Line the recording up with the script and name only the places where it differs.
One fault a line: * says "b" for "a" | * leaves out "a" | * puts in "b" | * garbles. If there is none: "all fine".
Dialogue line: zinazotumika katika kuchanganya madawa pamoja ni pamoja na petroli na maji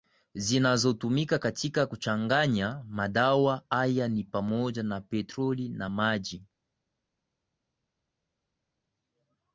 * says "haya" for "pamoja"